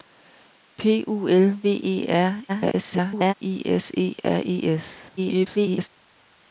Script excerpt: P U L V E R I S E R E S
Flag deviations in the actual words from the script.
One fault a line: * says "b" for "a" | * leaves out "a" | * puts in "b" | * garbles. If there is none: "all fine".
* garbles
* garbles